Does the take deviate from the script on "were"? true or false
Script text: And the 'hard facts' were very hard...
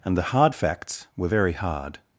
false